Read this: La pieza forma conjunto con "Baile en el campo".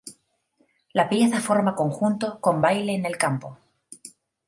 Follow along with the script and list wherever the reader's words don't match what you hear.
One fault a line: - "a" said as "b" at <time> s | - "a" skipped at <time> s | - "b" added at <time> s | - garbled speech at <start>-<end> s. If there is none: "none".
none